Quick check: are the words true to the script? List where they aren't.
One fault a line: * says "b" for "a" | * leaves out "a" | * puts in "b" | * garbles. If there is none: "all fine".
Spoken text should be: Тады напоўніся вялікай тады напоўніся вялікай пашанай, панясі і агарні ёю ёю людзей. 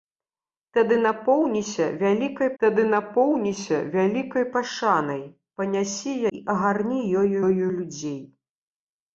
all fine